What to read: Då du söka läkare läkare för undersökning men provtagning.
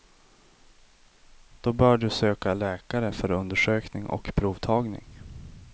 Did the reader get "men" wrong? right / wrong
wrong